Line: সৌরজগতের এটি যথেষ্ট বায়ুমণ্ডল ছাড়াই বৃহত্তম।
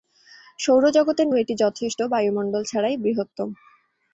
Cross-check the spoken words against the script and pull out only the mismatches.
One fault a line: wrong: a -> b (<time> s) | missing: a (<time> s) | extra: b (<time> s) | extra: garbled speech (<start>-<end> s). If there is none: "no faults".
no faults